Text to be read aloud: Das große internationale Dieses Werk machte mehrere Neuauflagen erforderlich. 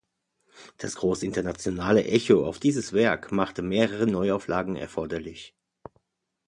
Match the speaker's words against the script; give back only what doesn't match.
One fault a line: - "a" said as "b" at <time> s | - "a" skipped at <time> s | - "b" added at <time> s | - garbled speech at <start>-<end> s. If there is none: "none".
- "Echo auf" added at 2.0 s